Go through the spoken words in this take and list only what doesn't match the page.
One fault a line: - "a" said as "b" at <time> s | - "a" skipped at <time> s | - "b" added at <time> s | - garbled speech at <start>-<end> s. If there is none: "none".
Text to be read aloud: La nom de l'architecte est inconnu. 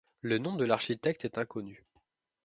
- "La" said as "Le" at 0.2 s